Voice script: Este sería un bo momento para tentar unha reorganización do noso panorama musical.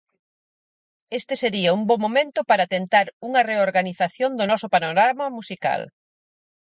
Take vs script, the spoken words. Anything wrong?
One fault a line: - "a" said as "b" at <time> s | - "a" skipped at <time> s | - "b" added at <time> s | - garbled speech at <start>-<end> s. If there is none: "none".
none